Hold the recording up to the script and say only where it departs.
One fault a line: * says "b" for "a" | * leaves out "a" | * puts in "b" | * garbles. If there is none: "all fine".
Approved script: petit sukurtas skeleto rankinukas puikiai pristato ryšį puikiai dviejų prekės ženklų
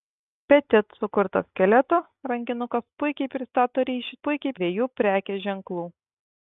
all fine